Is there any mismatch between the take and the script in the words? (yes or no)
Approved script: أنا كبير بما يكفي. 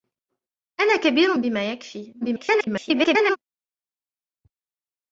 yes